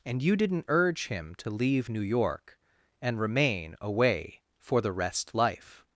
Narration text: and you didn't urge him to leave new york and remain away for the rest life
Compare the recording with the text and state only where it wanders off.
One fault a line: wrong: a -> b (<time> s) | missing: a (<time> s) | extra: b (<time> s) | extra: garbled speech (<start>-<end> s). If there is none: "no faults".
no faults